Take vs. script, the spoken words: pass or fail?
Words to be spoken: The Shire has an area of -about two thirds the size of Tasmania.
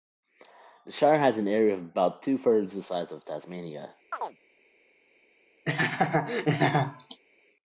pass